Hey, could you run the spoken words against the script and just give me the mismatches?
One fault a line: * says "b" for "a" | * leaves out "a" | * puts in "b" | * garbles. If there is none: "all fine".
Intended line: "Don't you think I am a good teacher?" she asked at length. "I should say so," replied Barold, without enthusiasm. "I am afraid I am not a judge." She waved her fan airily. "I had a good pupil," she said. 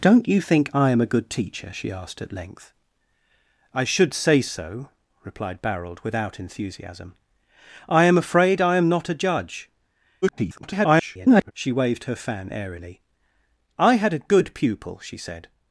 * garbles